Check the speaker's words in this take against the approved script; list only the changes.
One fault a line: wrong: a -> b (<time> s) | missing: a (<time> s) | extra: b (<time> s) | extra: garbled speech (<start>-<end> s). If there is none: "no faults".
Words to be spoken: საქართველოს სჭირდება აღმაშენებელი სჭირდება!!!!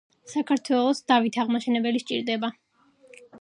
wrong: სჭირდება -> დავით (1.1 s)